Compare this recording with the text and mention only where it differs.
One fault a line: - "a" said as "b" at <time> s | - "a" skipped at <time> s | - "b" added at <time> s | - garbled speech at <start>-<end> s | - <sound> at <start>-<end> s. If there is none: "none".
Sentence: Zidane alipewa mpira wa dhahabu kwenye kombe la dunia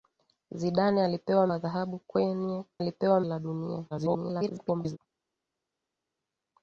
- "mpira" skipped at 1.5 s
- "kombe" said as "alipewa" at 2.8 s
- garbled speech at 3.9-5.0 s